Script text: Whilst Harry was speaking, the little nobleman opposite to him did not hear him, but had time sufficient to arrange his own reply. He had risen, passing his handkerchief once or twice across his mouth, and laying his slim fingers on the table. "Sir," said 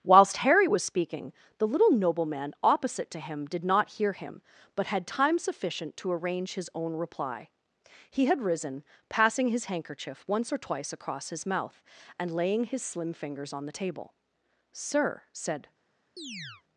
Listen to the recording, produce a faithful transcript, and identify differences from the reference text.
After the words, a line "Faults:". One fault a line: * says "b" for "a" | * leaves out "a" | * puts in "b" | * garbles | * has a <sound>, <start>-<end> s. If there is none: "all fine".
Whilst Harry was speaking, the little nobleman opposite to him did not hear him, but had time sufficient to arrange his own reply. He had risen, passing his handkerchief once or twice across his mouth, and laying his slim fingers on the table. "Sir," said
Faults:
* has a chirp, 16.2-16.6 s